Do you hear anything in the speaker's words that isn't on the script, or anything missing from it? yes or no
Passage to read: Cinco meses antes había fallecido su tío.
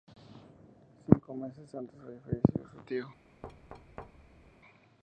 no